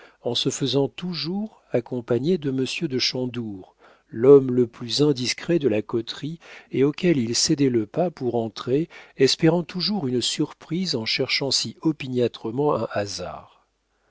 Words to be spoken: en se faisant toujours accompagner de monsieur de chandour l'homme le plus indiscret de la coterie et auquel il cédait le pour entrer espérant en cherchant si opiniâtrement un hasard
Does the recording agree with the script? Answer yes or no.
no